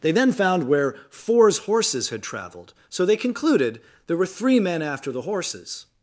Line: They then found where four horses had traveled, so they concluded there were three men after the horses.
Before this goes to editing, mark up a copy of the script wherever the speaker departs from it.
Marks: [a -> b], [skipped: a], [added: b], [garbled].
They then found where [four -> fours] horses had traveled, so they concluded there were three men after the horses.